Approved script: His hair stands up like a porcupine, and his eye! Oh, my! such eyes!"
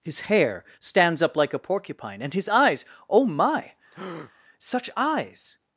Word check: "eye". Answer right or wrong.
wrong